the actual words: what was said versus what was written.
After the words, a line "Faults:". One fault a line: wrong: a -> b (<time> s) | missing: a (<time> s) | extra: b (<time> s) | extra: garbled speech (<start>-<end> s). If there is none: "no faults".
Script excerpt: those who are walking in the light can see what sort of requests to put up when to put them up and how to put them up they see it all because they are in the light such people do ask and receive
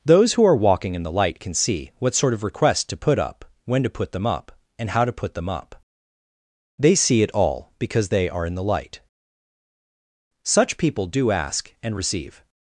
those who are walking in the light can see what sort of requests to put up when to put them up and how to put them up they see it all because they are in the light such people do ask and receive
Faults:
no faults